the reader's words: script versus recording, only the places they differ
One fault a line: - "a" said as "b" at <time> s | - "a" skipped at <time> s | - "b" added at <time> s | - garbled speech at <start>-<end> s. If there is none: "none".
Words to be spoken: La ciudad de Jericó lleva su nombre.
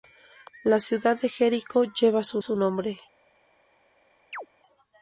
- "su" added at 2.4 s